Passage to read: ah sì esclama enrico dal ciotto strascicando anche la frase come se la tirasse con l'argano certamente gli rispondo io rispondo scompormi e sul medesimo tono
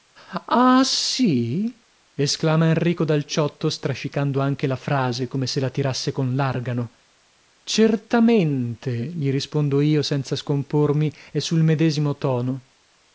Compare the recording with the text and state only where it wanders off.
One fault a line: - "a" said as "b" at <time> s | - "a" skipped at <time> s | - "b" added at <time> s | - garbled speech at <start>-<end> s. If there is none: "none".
- "rispondo" said as "senza" at 10.0 s